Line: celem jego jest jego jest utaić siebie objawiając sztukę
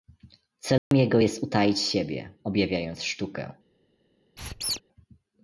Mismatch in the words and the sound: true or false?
true